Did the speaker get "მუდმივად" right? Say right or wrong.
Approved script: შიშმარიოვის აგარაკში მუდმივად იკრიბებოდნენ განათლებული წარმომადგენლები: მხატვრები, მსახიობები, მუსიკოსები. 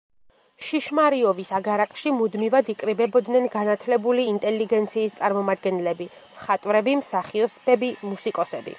right